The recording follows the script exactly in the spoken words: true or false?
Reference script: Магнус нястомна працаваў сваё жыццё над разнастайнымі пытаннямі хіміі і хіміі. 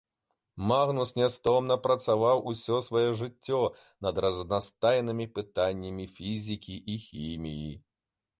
false